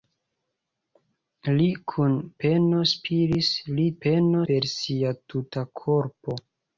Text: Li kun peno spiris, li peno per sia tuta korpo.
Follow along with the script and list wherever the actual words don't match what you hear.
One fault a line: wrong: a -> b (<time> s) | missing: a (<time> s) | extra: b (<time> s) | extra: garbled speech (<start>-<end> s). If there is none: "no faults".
no faults